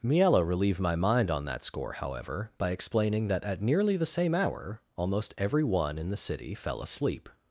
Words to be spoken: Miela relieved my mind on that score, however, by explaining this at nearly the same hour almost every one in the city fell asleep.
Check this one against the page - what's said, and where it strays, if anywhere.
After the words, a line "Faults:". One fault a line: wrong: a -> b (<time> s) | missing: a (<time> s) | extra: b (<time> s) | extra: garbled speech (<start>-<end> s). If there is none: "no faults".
Miela relieved my mind on that score, however, by explaining that at nearly the same hour almost every one in the city fell asleep.
Faults:
wrong: this -> that (3.3 s)